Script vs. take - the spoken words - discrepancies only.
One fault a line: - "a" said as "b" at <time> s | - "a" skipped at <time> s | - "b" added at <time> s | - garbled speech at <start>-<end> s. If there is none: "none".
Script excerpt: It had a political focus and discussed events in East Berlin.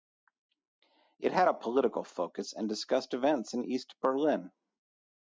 none